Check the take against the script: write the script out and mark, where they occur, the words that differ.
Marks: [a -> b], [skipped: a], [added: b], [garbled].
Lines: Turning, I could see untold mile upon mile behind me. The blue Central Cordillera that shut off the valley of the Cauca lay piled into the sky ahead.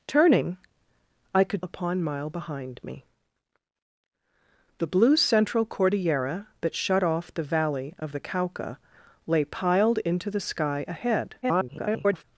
Turning, I could [skipped: see untold mile] upon mile behind me. The blue Central Cordillera that shut off the valley of the Cauca lay piled into the sky ahead. [garbled]